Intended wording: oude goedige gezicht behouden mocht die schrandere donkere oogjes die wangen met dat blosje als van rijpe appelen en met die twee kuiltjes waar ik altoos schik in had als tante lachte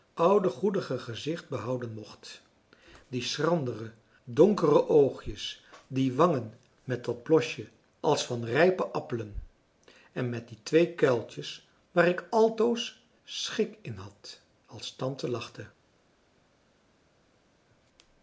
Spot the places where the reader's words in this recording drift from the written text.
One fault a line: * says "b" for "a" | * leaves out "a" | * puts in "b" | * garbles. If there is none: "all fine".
all fine